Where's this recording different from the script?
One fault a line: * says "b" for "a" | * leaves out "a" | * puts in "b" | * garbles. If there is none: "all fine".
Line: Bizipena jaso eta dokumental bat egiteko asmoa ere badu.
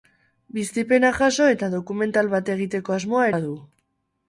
* leaves out "ere"